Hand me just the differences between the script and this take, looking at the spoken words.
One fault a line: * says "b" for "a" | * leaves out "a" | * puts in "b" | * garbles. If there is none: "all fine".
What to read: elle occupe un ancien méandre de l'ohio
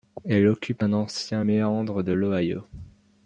all fine